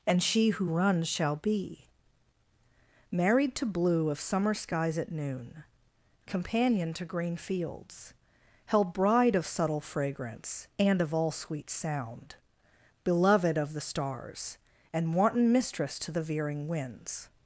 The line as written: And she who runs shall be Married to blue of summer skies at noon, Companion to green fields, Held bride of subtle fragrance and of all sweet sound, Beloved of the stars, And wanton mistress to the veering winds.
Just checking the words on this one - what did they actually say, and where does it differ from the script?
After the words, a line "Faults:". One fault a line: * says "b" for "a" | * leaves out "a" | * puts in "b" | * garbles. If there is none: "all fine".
And she who runs shall be Married to blue of summer skies at noon, Companion to green fields, Held bride of subtle fragrance and of all sweet sound, Beloved of the stars, And wanton mistress to the veering winds.
Faults:
all fine